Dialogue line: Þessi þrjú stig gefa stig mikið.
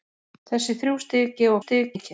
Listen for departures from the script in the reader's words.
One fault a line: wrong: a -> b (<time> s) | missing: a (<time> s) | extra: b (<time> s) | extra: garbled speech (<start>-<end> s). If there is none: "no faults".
no faults